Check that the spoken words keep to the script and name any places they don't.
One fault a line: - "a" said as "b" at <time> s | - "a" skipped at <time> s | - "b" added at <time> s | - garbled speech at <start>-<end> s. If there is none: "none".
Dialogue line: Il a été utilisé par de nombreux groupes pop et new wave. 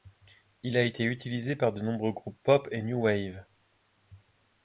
none